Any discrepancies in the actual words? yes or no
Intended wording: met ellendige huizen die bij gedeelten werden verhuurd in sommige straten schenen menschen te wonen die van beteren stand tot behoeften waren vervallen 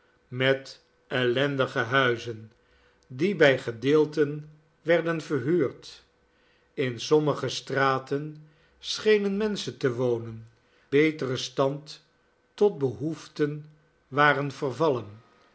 yes